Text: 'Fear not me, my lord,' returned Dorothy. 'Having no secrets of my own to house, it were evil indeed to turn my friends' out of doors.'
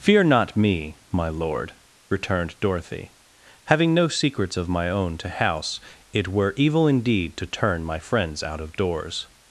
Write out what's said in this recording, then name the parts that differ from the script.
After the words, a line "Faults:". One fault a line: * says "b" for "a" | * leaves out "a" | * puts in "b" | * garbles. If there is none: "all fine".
'Fear not me, my lord,' returned Dorothy. 'Having no secrets of my own to house, it were evil indeed to turn my friends' out of doors.'
Faults:
all fine